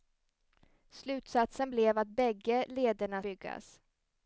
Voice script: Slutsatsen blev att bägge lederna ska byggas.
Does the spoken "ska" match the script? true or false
false